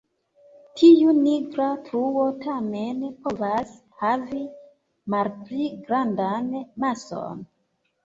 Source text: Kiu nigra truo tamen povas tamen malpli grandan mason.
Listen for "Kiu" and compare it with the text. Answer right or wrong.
wrong